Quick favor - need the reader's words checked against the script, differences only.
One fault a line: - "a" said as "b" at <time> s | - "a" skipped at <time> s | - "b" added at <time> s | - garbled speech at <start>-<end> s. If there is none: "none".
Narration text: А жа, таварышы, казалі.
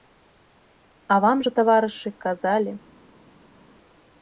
- "вам" added at 1.2 s